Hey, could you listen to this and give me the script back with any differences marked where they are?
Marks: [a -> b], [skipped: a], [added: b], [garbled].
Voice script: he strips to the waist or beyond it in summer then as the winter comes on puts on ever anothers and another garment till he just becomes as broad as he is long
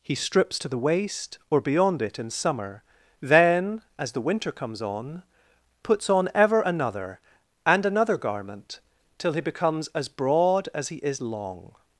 he strips to the waist or beyond it in summer then as the winter comes on puts on ever [anothers -> another] and another garment till he [skipped: just] becomes as broad as he is long